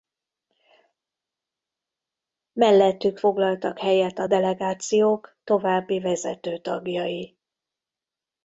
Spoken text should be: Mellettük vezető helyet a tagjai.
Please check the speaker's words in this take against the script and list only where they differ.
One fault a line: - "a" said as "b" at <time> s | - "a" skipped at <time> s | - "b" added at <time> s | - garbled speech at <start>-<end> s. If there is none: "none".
- "vezető" said as "foglaltak" at 3.2 s
- "delegációk további vezető" added at 4.2 s